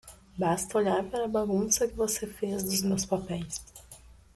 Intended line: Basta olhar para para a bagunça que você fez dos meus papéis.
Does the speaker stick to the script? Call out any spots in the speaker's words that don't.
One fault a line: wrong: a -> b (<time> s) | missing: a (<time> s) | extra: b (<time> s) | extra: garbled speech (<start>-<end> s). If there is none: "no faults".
missing: para (1.2 s)